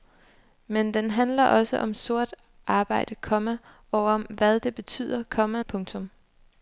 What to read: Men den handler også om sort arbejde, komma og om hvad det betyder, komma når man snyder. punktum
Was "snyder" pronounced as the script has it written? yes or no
no